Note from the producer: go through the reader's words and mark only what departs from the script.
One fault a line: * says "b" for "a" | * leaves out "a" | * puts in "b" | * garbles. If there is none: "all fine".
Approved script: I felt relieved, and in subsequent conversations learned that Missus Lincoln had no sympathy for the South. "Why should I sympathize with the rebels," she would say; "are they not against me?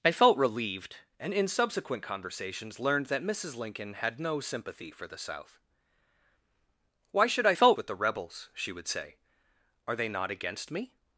* says "felt" for "sympathize"